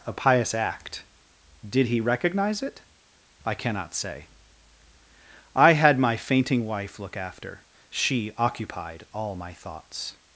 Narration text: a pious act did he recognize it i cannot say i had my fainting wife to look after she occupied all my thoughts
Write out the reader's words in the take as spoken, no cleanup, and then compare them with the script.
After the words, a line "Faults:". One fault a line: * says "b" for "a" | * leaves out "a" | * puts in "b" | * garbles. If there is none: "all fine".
a pious act did he recognize it i cannot say i had my fainting wife look after she occupied all my thoughts
Faults:
* leaves out "to"